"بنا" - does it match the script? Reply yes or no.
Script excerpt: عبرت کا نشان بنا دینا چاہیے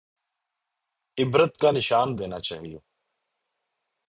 no